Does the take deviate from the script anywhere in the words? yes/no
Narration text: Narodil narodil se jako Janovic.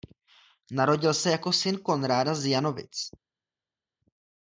yes